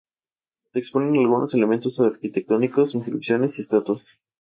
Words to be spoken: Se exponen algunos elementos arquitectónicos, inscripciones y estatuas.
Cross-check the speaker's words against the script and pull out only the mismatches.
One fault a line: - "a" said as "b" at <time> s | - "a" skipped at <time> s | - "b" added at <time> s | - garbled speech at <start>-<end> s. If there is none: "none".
none